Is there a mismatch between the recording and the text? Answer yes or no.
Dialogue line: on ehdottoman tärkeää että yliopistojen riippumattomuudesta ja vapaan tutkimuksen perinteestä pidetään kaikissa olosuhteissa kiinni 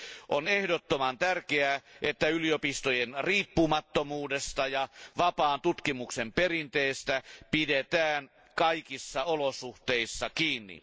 no